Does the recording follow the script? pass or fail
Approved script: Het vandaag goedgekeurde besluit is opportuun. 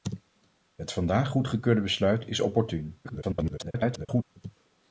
fail